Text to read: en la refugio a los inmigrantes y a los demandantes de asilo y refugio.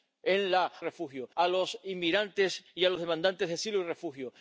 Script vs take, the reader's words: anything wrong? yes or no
no